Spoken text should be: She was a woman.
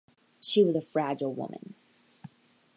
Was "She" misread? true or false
false